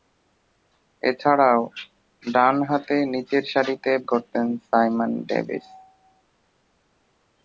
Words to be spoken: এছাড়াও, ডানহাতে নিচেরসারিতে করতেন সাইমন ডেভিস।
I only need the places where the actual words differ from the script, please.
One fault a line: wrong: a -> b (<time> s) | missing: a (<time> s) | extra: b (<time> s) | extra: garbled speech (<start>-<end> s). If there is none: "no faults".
no faults